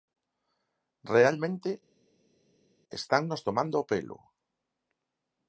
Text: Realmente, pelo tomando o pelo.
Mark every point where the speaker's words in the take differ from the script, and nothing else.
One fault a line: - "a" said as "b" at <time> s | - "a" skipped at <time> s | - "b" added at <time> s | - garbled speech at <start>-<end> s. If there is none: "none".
- "pelo" said as "estannos" at 3.0 s